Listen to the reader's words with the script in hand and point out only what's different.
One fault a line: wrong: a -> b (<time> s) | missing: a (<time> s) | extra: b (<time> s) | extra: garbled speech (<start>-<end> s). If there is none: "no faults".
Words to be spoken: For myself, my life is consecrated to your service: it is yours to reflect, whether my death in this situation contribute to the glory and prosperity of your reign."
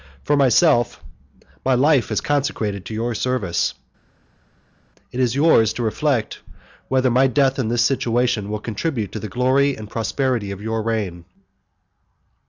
extra: will (8.5 s)